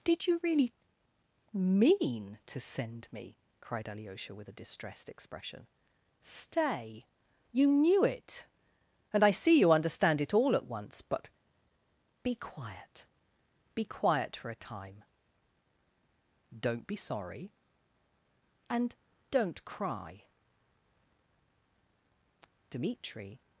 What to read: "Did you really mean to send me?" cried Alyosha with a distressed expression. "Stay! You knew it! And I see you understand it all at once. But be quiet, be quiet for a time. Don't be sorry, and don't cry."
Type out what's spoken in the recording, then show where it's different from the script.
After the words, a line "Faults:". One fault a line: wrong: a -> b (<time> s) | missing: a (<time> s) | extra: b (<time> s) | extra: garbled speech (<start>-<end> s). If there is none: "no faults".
"Did you really mean to send me?" cried Alyosha with a distressed expression. "Stay! You knew it! And I see you understand it all at once. But be quiet, be quiet for a time. Don't be sorry, and don't cry." Dmitri
Faults:
extra: Dmitri (22.7 s)